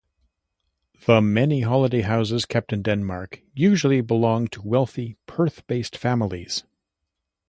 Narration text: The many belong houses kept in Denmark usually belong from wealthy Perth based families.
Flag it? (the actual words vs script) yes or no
yes